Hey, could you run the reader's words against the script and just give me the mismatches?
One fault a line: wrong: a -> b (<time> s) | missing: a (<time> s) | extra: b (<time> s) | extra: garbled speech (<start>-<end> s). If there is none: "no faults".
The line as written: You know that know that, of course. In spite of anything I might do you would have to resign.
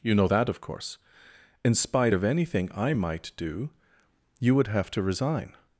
missing: know that (0.5 s)